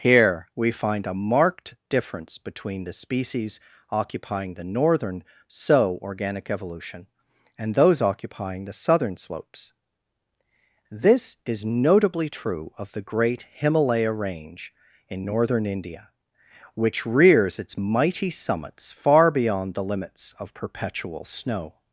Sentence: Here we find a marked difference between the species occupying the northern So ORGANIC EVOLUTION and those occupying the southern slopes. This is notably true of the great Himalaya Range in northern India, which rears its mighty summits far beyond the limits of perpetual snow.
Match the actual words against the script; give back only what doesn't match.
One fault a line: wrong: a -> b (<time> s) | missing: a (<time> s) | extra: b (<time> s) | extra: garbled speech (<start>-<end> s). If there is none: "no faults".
no faults